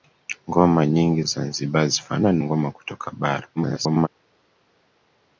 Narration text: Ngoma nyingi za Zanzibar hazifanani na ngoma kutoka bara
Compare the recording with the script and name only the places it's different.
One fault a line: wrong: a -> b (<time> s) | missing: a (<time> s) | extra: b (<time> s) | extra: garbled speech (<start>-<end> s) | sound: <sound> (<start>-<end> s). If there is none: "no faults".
missing: za (1.2 s)
missing: na (2.4 s)
extra: garbled speech (3.6-4.1 s)